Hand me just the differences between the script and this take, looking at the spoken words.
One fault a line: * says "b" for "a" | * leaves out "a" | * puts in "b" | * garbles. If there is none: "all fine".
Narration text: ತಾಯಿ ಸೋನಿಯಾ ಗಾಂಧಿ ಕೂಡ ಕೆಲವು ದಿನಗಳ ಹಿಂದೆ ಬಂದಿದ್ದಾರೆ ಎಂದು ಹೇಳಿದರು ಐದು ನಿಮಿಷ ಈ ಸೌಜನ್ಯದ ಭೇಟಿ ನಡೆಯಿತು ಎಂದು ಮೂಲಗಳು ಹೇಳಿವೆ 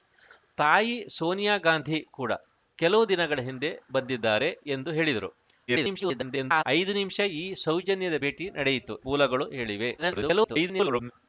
* garbles
* leaves out "ಎಂದು"
* garbles